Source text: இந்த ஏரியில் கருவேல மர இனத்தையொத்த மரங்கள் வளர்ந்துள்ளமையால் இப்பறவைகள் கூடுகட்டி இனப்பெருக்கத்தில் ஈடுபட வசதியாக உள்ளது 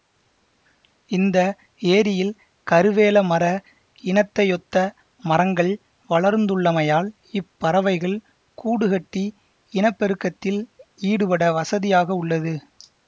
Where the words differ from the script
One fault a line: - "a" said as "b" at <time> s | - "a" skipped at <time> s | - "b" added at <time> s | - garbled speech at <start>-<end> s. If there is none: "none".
none